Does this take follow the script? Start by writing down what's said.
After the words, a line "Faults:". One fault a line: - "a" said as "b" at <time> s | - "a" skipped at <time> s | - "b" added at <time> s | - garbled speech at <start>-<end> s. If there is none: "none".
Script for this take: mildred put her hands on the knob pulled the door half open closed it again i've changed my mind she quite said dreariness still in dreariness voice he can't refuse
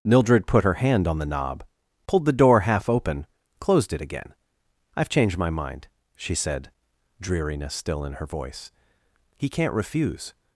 mildred put her hand on the knob pulled the door half open closed it again i've changed my mind she said dreariness still in her voice he can't refuse
Faults:
- "hands" said as "hand" at 0.8 s
- "quite" skipped at 6.3 s
- "dreariness" said as "her" at 8.1 s